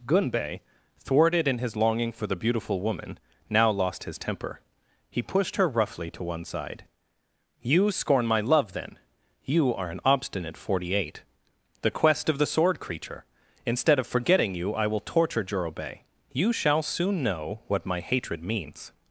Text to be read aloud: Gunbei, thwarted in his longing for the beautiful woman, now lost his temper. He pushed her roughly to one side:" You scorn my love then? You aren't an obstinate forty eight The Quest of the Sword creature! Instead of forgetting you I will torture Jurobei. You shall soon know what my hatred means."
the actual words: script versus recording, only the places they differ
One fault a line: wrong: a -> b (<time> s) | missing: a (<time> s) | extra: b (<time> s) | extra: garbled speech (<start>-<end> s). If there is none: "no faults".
wrong: aren't -> are (9.8 s)